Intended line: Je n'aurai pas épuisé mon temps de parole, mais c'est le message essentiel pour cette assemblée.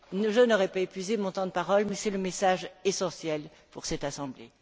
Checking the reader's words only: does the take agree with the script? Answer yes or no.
yes